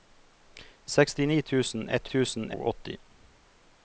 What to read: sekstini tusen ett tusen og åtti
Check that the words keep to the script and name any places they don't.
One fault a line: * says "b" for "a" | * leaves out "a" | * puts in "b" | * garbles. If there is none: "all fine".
all fine